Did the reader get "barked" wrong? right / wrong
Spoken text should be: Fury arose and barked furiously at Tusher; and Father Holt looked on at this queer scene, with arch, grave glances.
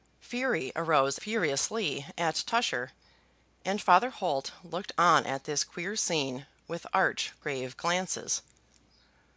wrong